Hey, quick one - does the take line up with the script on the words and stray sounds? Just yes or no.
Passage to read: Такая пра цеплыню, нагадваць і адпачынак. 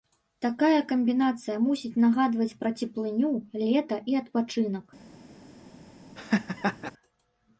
no